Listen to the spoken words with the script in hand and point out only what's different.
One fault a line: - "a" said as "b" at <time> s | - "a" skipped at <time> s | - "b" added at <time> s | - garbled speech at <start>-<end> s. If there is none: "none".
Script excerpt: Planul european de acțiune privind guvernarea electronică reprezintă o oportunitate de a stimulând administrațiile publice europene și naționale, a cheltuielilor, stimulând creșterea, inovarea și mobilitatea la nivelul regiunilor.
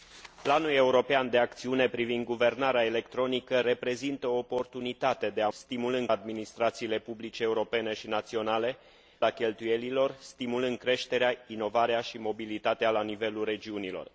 none